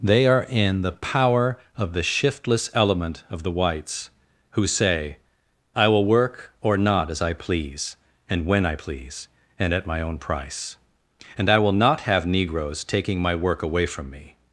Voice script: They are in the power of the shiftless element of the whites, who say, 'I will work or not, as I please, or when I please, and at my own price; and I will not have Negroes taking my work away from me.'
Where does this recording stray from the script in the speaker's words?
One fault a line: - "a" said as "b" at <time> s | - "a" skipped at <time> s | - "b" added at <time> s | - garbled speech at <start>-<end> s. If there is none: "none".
- "or" said as "and" at 8.3 s